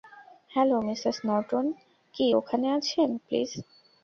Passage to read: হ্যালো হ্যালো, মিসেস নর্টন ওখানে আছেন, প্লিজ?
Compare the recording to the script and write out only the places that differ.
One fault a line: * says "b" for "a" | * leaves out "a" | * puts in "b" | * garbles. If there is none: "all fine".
* leaves out "হ্যালো"
* puts in "কি"